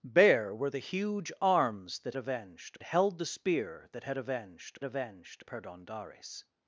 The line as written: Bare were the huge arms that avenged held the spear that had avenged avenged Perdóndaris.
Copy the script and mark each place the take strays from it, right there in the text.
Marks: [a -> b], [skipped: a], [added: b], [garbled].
Bare were the huge arms that avenged held the spear that had avenged avenged Perdóndaris.